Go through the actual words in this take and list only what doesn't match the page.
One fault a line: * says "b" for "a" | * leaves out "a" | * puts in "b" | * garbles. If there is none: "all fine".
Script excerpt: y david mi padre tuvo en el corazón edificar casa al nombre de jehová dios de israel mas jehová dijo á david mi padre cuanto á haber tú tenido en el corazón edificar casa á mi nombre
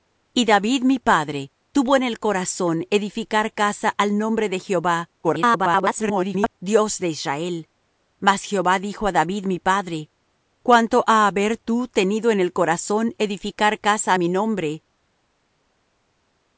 * garbles